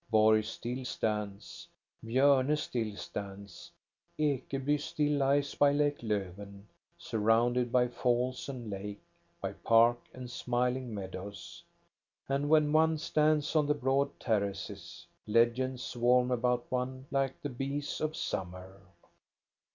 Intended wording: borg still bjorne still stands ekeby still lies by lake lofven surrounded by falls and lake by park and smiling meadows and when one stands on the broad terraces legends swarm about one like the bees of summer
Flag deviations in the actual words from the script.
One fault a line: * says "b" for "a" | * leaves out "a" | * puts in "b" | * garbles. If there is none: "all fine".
* puts in "stands"